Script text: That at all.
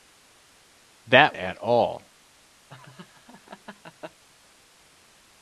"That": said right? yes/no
yes